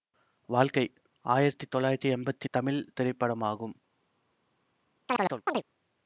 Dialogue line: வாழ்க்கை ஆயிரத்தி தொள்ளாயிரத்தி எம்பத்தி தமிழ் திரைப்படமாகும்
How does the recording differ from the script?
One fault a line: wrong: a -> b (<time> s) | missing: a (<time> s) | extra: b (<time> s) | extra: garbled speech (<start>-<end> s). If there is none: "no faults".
no faults